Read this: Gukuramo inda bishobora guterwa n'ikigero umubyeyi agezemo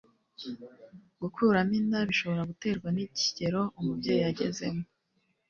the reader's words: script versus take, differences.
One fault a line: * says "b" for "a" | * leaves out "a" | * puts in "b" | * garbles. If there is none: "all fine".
all fine